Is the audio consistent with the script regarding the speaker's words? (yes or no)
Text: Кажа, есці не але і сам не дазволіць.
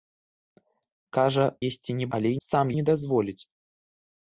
yes